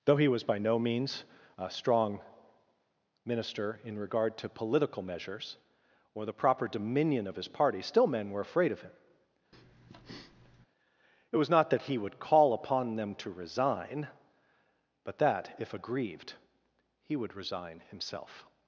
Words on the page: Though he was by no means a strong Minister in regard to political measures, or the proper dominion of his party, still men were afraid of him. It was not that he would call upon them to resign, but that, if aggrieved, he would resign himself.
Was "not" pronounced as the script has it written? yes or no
yes